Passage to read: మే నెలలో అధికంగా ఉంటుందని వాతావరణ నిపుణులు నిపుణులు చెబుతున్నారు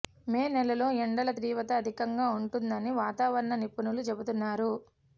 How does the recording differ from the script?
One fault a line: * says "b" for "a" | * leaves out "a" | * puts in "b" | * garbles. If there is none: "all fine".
* puts in "ఎండల తీవ్రత"
* leaves out "నిపుణులు"